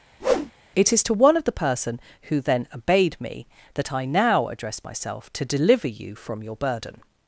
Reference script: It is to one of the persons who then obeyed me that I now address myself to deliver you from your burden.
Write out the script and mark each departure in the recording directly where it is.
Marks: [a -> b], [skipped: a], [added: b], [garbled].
It is to one of the [persons -> person] who then obeyed me that I now address myself to deliver you from your burden.